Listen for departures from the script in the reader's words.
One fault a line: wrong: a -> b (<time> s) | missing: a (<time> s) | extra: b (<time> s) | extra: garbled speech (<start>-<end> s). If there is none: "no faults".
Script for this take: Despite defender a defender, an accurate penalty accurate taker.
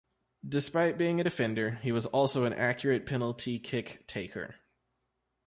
wrong: defender -> being (1.0 s)
extra: he was also (1.7 s)
wrong: accurate -> kick (3.6 s)